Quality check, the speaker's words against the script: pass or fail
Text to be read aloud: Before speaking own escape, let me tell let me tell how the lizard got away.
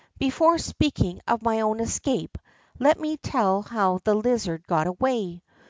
fail